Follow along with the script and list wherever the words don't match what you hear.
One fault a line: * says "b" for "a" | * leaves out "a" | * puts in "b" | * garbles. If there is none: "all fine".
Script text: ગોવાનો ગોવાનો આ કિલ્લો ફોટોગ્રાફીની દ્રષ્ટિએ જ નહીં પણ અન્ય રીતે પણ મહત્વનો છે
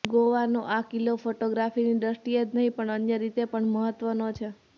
* leaves out "ગોવાનો"